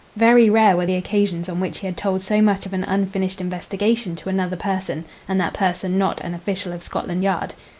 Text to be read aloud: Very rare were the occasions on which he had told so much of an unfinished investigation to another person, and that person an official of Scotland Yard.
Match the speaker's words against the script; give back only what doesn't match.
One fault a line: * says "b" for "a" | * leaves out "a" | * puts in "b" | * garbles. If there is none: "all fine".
* puts in "not"